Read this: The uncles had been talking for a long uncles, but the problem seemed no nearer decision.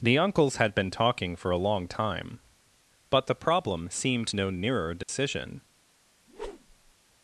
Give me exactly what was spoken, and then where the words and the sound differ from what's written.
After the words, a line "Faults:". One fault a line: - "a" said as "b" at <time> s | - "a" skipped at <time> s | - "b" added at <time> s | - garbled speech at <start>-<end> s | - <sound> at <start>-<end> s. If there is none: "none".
The uncles had been talking for a long time, but the problem seemed no nearer decision.
Faults:
- "uncles" said as "time" at 1.9 s
- dropout at 5.0-5.1 s
- whoosh at 6.3-6.9 s